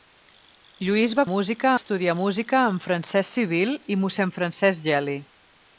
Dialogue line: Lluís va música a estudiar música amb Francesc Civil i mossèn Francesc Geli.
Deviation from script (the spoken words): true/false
false